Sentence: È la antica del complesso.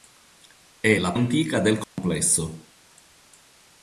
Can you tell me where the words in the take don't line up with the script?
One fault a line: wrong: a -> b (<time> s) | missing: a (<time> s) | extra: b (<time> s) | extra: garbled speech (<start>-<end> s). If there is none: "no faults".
no faults